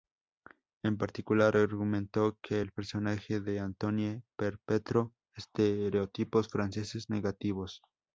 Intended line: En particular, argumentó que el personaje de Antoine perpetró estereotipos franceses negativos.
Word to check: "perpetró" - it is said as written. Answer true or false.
true